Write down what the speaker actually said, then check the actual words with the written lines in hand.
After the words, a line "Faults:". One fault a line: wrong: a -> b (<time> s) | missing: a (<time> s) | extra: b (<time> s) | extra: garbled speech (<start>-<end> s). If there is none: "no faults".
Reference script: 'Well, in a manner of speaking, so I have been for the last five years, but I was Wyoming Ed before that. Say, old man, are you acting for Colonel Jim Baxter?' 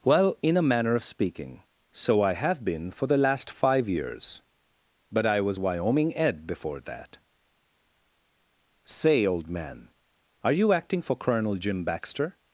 'Well, in a manner of speaking, so I have been for the last five years, but I was Wyoming Ed before that. Say, old man, are you acting for Colonel Jim Baxter?'
Faults:
no faults